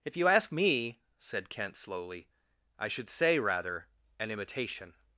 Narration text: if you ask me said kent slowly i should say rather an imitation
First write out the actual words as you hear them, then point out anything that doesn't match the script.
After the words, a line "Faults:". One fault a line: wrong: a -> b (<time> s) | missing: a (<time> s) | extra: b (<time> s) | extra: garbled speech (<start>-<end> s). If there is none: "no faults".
if you ask me said kent slowly i should say rather an imitation
Faults:
no faults